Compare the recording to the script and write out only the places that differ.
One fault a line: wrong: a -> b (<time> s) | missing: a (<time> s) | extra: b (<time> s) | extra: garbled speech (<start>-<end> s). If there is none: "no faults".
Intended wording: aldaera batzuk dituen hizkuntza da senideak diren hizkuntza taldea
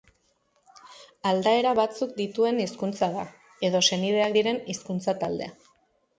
extra: edo (3.7 s)